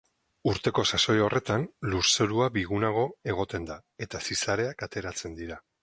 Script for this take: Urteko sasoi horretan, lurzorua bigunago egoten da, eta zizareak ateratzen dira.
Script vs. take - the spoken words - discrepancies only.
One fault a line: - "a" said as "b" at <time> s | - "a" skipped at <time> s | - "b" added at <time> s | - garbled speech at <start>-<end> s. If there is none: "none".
none